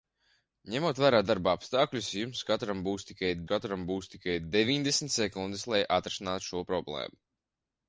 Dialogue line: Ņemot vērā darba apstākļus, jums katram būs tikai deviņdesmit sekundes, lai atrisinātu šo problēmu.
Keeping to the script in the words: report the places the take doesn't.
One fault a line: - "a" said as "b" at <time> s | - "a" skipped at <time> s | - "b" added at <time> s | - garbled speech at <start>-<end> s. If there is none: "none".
- "katram būs tikai" added at 3.5 s